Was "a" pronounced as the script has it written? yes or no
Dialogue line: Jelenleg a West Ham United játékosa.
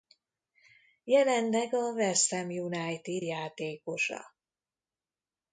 yes